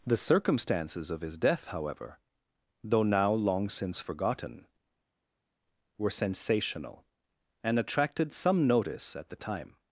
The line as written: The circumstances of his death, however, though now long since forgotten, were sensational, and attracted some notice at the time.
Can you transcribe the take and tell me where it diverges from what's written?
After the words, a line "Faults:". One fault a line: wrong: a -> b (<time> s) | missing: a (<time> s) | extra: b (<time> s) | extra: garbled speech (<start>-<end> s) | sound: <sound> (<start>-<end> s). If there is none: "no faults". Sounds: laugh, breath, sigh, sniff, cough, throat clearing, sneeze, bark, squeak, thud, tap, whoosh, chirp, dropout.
The circumstances of his death, however, though now long since forgotten, were sensational, and attracted some notice at the time.
Faults:
no faults